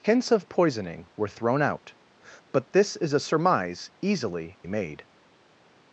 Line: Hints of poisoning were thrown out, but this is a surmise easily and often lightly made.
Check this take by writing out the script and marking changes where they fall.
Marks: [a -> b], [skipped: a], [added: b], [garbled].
Hints of poisoning were thrown out, but this is a surmise easily [skipped: and often lightly] made.